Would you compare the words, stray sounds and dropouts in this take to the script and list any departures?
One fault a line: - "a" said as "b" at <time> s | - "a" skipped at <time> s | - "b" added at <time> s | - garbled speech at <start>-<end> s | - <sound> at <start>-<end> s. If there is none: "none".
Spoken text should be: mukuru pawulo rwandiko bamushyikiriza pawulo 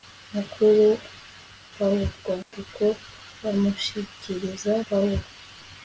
- dropout at 2.4-2.5 s